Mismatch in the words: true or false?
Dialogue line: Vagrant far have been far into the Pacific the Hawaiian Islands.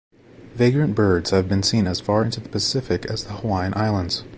true